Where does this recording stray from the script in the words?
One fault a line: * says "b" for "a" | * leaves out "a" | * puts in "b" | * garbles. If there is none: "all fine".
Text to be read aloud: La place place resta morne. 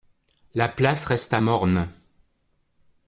* leaves out "place"